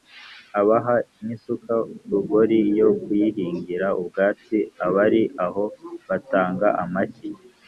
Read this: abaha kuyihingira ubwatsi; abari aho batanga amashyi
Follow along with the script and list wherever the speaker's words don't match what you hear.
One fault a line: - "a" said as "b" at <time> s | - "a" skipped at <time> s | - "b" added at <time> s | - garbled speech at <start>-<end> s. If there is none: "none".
- "n'isuka rugori yo" added at 1.2 s